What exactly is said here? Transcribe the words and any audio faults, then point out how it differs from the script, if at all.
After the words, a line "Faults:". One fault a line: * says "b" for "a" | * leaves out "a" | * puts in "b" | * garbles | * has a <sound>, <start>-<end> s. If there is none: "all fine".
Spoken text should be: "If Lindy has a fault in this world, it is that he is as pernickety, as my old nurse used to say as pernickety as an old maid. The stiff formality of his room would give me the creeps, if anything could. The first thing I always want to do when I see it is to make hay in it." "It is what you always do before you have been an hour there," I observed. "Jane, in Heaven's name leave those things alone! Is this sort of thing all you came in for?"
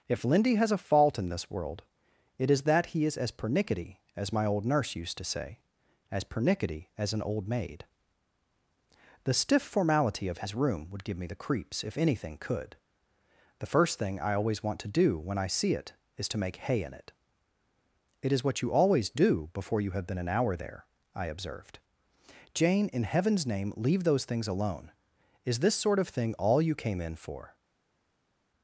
"If Lindy has a fault in this world, it is that he is as pernickety, as my old nurse used to say as pernickety as an old maid. The stiff formality of his room would give me the creeps, if anything could. The first thing I always want to do when I see it is to make hay in it." "It is what you always do before you have been an hour there," I observed. "Jane, in Heaven's name leave those things alone! Is this sort of thing all you came in for?"
Faults:
all fine